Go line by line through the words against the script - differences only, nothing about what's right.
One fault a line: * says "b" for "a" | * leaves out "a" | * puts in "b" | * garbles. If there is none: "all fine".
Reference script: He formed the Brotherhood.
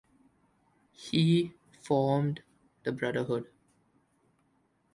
all fine